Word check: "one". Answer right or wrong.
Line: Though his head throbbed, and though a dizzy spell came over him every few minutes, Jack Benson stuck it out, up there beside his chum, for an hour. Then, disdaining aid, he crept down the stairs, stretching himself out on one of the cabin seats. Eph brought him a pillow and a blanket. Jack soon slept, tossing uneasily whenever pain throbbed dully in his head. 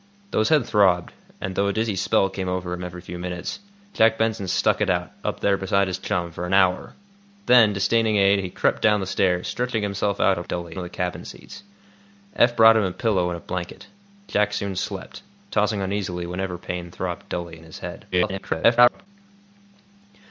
wrong